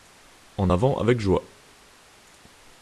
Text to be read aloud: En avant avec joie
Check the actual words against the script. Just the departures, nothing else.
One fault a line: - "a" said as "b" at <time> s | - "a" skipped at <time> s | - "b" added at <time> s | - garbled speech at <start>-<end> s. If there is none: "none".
none